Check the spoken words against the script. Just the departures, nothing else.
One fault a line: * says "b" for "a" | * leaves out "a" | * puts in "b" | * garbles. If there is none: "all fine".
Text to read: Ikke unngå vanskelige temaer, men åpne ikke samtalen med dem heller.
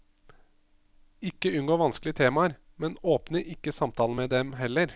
all fine